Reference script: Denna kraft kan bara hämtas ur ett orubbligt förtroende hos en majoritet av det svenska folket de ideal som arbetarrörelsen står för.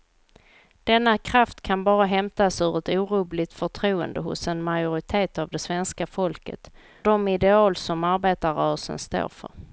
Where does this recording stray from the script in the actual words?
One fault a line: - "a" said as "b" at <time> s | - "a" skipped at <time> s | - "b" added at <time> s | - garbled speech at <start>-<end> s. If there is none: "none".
none